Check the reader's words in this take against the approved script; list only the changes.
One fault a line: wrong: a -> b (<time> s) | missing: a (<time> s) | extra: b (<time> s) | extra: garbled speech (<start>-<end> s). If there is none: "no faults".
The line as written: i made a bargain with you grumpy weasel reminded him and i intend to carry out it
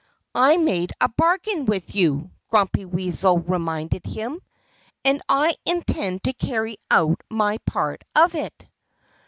extra: my part of (7.3 s)